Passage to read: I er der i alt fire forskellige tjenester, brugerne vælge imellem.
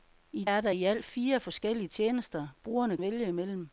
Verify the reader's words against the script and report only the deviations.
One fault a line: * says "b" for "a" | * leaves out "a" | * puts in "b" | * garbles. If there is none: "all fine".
all fine